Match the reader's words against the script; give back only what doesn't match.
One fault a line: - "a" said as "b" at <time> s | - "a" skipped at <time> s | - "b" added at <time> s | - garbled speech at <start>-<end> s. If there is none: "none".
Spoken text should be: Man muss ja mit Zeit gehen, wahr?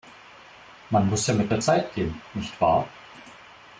- "der" added at 1.5 s
- "nicht" added at 2.3 s